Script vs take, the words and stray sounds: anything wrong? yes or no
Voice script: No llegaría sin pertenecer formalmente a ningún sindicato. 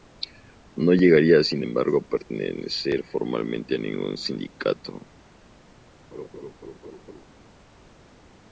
yes